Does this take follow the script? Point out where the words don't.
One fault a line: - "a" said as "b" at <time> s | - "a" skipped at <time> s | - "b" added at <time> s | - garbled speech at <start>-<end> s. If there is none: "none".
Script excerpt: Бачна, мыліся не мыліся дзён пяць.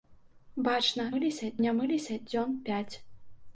none